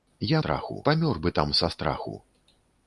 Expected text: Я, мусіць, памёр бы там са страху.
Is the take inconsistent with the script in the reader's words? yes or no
yes